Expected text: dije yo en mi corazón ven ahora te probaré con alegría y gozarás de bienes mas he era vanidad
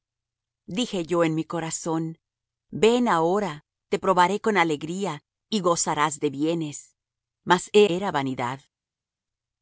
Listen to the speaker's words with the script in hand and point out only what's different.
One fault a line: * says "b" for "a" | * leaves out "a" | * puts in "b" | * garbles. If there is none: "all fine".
all fine